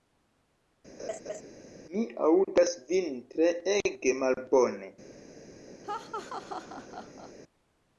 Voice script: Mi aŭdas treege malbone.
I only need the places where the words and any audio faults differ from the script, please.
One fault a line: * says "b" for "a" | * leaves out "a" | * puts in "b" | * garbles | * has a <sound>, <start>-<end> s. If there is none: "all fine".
* has a laugh, 1.0-1.4 s
* puts in "vin"
* has a laugh, 5.8-7.3 s